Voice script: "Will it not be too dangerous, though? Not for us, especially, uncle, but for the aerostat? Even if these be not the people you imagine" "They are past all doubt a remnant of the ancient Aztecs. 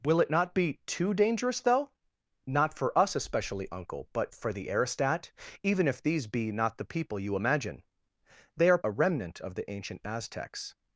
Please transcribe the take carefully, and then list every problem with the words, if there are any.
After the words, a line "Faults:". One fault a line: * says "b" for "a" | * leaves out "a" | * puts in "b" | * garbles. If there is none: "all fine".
"Will it not be too dangerous, though? Not for us, especially, uncle, but for the aerostat? Even if these be not the people you imagine" "They are a remnant of the ancient Aztecs.
Faults:
* leaves out "past all doubt"